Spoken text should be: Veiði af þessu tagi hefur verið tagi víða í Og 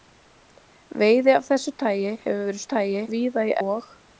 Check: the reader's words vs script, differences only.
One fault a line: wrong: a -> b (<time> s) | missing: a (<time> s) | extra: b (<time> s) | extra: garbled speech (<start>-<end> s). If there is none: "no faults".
no faults